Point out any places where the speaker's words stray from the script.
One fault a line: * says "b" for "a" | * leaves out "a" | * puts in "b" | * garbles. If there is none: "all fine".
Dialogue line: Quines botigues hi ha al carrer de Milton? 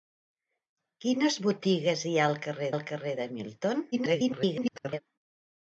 * puts in "al carrer"
* garbles